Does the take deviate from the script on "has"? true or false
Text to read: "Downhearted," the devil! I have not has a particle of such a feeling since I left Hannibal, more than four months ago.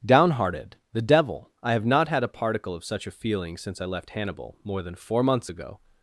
true